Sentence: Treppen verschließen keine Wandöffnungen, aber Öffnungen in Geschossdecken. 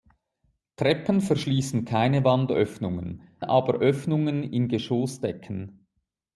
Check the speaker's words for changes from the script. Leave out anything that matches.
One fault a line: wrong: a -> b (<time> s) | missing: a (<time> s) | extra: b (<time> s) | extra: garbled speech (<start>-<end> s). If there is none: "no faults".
no faults